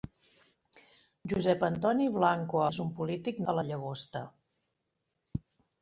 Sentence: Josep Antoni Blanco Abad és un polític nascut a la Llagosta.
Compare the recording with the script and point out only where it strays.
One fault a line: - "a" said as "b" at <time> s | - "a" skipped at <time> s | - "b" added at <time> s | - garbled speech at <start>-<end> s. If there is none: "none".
- "Abad" skipped at 2.6 s
- "nascut" skipped at 3.4 s